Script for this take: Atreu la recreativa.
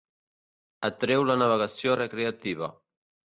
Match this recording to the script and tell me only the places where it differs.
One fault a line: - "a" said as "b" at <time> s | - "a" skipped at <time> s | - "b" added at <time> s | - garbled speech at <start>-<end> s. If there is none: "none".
- "navegació" added at 1.4 s